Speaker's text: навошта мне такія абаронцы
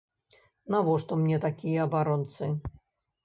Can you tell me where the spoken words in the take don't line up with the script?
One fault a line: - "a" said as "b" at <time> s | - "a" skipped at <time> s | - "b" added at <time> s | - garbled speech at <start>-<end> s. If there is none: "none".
none